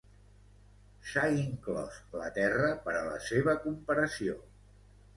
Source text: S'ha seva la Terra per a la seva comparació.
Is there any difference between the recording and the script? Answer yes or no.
yes